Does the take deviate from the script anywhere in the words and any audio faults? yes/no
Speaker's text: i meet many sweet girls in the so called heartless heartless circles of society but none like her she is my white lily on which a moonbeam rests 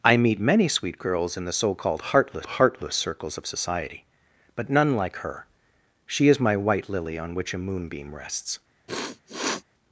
yes